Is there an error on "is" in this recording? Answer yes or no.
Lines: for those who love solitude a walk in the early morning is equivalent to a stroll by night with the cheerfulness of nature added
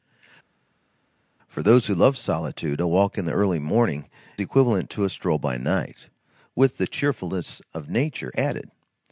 yes